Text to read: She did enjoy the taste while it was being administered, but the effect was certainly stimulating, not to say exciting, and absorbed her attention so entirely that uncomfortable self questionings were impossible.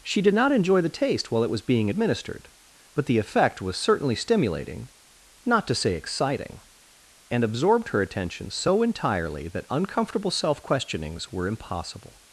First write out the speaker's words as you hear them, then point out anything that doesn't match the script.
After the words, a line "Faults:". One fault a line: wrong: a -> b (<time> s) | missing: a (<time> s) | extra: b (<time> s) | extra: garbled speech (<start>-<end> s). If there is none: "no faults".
She did not enjoy the taste while it was being administered, but the effect was certainly stimulating, not to say exciting, and absorbed her attention so entirely that uncomfortable self questionings were impossible.
Faults:
extra: not (0.3 s)